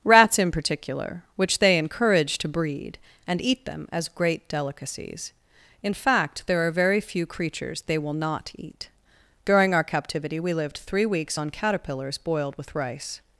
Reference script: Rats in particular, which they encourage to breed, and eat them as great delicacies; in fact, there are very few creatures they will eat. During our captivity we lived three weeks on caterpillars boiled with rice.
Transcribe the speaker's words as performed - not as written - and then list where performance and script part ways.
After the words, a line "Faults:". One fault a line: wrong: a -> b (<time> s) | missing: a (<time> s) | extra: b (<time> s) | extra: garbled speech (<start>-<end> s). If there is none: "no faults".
Rats in particular, which they encourage to breed, and eat them as great delicacies; in fact, there are very few creatures they will not eat. During our captivity we lived three weeks on caterpillars boiled with rice.
Faults:
extra: not (8.1 s)